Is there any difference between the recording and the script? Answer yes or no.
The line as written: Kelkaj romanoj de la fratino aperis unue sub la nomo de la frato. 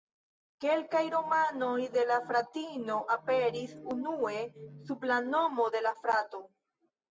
no